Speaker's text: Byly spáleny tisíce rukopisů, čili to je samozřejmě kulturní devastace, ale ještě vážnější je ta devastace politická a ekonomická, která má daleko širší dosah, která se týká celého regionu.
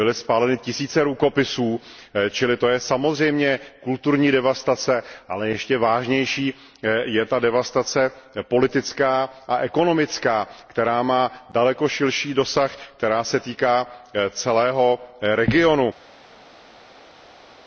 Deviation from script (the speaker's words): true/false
false